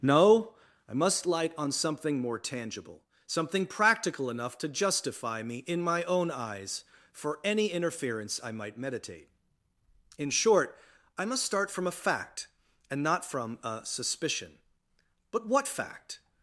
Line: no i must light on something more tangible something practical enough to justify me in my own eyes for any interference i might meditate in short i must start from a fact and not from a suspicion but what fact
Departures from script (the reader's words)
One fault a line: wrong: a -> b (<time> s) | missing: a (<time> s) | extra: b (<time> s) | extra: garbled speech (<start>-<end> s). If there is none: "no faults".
no faults